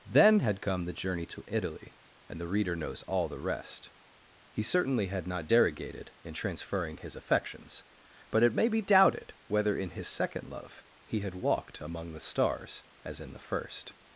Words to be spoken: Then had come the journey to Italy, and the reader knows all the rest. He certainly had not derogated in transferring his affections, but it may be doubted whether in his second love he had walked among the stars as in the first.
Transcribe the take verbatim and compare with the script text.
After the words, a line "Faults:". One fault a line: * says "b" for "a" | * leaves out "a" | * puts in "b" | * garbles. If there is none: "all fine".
Then had come the journey to Italy, and the reader knows all the rest. He certainly had not derogated in transferring his affections, but it may be doubted whether in his second love he had walked among the stars as in the first.
Faults:
all fine